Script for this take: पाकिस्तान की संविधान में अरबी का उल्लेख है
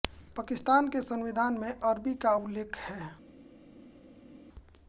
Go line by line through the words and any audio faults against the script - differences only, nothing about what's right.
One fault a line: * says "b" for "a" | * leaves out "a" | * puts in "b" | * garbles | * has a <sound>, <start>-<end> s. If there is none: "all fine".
* says "के" for "की"